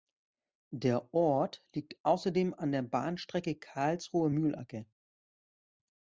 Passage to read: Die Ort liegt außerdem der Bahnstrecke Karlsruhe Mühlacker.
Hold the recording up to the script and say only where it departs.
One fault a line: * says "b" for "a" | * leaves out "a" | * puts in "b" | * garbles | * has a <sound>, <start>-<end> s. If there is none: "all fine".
* says "Der" for "Die"
* puts in "an"